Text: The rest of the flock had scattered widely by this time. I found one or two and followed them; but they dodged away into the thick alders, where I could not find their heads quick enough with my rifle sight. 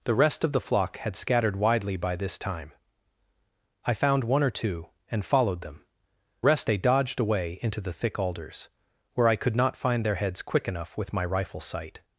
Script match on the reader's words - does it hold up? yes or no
no